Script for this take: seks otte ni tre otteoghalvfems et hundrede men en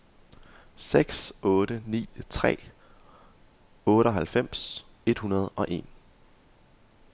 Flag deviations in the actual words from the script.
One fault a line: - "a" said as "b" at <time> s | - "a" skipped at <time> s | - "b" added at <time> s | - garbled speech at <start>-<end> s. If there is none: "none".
- "men" said as "og" at 5.5 s